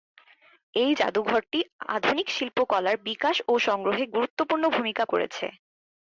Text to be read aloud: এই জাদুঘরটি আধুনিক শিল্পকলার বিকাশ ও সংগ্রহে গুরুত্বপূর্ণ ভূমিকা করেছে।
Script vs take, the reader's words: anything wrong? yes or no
no